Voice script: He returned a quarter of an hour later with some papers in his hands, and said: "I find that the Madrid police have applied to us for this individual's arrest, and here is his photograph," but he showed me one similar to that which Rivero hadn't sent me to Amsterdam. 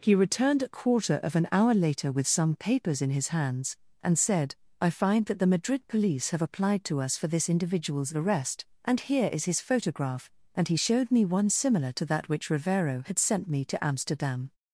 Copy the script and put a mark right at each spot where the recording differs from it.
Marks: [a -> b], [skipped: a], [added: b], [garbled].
He returned a quarter of an hour later with some papers in his hands, and said: "I find that the Madrid police have applied to us for this individual's arrest, and here is his photograph," [but -> and] he showed me one similar to that which Rivero [hadn't -> had] sent me to Amsterdam.